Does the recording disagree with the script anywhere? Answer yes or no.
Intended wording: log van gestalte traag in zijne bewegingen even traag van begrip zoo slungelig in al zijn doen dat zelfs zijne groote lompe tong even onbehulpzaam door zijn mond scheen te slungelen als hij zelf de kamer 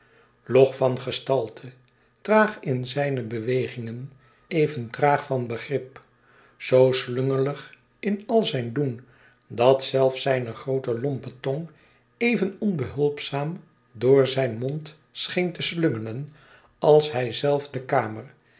no